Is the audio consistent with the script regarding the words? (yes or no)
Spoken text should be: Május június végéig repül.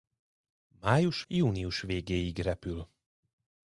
yes